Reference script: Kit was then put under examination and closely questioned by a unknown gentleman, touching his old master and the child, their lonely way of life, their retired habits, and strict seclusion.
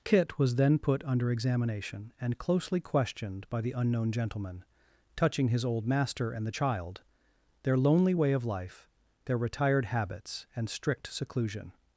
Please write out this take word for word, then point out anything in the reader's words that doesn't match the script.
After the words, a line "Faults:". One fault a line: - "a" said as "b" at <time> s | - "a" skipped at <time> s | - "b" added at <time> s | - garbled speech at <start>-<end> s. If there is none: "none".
Kit was then put under examination and closely questioned by the unknown gentleman, touching his old master and the child, their lonely way of life, their retired habits, and strict seclusion.
Faults:
- "a" said as "the" at 3.6 s